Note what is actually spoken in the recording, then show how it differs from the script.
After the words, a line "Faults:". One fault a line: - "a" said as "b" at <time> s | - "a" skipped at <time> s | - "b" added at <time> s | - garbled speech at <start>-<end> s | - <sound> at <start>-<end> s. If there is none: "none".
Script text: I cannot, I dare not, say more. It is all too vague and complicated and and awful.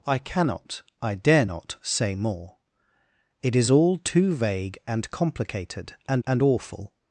I cannot, I dare not, say more. It is all too vague and complicated and and awful.
Faults:
none